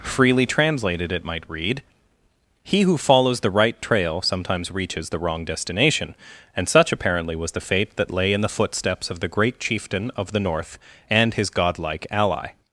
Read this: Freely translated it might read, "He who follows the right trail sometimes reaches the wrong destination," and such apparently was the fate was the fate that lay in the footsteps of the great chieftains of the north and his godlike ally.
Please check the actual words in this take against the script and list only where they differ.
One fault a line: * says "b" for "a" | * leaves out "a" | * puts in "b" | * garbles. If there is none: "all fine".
* leaves out "was the fate"
* says "chieftain" for "chieftains"